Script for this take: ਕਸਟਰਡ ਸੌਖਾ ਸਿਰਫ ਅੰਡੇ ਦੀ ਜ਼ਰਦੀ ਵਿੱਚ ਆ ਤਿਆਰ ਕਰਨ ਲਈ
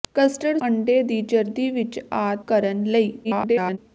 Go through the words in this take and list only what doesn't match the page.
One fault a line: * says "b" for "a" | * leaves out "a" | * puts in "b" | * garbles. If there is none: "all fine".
* leaves out "ਸੌਖਾ ਸਿਰਫ"
* leaves out "ਤਿਆਰ"
* garbles